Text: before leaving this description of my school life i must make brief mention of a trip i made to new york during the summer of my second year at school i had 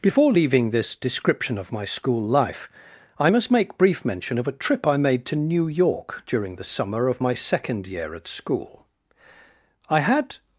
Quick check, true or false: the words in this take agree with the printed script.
true